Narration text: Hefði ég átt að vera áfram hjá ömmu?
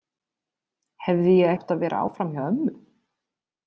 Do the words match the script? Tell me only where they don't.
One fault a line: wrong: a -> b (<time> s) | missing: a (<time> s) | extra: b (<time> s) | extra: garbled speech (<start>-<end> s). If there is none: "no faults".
no faults